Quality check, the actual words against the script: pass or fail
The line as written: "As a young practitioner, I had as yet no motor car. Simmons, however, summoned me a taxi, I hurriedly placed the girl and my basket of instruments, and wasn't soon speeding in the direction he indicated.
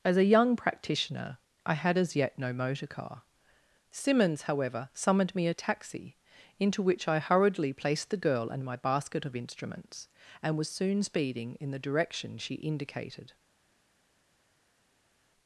fail